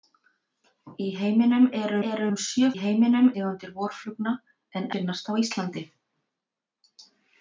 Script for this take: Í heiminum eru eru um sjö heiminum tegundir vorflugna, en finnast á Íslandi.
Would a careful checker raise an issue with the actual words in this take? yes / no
no